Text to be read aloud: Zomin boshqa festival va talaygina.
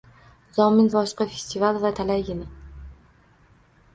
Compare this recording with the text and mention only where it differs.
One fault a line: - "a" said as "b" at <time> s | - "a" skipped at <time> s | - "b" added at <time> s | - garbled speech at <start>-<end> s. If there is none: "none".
none